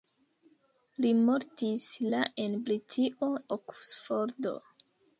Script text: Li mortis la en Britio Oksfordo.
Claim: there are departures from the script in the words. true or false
false